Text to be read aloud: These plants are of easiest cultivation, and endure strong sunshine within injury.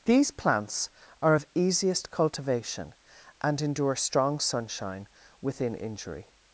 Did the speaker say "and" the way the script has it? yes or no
yes